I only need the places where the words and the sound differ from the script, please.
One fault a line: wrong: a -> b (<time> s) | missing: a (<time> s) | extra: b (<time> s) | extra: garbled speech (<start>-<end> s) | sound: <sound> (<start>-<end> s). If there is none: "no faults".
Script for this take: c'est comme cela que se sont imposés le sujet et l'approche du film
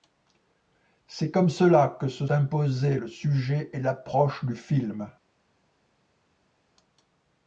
missing: sont (2.2 s)